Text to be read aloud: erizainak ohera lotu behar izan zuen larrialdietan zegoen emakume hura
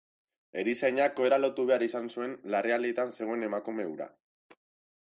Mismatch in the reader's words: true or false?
false